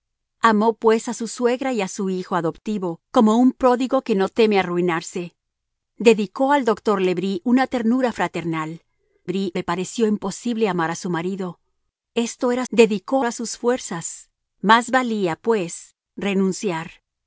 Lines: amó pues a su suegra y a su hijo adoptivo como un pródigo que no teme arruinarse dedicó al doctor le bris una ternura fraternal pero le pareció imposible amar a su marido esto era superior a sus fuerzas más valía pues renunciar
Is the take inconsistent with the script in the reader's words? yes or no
yes